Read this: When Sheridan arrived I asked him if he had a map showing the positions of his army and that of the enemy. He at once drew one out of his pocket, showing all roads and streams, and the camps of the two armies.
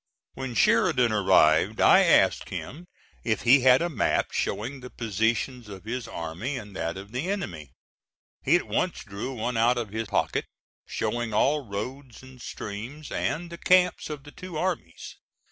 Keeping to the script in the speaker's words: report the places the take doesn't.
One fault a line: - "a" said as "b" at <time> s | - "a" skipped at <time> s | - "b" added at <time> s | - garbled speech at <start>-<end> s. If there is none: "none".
none